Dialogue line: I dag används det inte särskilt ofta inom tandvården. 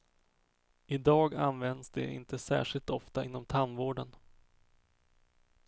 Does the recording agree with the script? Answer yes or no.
yes